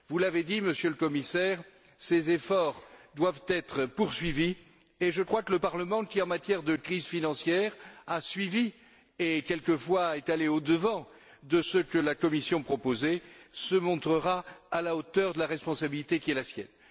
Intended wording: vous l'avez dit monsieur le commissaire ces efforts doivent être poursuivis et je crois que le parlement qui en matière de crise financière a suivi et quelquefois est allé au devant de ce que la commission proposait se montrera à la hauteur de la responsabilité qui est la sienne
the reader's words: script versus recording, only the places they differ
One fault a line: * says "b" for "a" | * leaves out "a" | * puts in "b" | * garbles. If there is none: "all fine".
all fine